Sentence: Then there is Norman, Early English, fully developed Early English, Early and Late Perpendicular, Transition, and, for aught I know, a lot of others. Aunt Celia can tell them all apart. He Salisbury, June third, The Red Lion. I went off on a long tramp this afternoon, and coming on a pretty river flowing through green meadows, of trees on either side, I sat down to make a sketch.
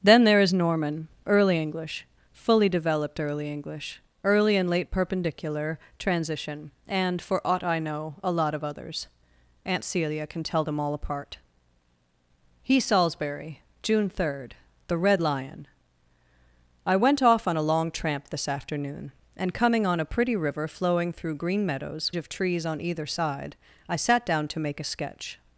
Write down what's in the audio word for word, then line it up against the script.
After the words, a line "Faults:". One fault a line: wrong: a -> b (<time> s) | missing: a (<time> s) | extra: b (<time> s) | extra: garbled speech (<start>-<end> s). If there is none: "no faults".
Then there is Norman, Early English, fully developed Early English, Early and Late Perpendicular, Transition, and, for aught I know, a lot of others. Aunt Celia can tell them all apart. He Salisbury, June third, The Red Lion. I went off on a long tramp this afternoon, and coming on a pretty river flowing through green meadows, of trees on either side, I sat down to make a sketch.
Faults:
no faults